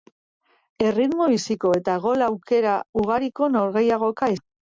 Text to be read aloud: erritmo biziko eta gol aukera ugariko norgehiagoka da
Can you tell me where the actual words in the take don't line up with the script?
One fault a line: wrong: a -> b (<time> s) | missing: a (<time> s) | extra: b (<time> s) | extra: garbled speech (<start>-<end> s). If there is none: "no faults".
no faults